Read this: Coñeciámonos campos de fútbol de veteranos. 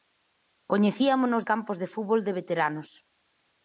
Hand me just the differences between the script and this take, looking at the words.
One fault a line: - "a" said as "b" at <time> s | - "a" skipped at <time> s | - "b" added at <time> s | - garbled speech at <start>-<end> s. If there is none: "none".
none